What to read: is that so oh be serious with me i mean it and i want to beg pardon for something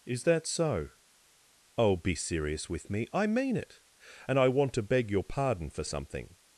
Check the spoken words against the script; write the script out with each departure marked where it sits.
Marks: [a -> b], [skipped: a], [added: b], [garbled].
is that so oh be serious with me i mean it and i want to beg [added: your] pardon for something